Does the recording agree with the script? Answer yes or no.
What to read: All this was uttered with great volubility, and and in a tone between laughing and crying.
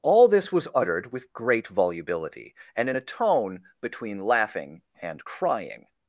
no